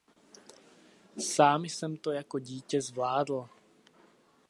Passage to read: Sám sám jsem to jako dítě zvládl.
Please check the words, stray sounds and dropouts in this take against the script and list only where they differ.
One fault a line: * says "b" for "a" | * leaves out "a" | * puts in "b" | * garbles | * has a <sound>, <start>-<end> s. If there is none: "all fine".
* leaves out "sám"